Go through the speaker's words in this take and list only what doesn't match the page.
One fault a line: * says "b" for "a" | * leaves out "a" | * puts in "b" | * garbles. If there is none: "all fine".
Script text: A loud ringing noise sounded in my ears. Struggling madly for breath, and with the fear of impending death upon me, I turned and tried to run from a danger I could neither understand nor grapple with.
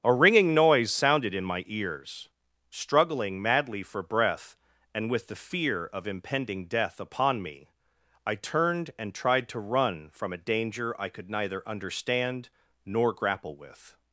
* leaves out "loud"